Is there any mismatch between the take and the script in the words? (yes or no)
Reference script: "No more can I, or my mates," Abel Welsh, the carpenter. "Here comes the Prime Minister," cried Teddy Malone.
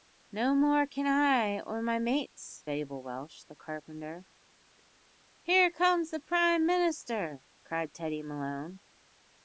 no